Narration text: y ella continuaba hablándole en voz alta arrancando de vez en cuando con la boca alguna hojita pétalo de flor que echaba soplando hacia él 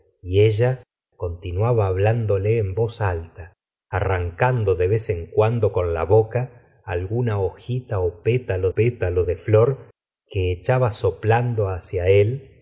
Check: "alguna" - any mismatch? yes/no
no